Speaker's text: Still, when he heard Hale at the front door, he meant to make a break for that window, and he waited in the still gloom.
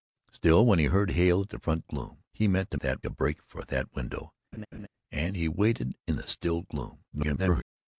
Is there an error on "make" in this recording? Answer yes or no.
yes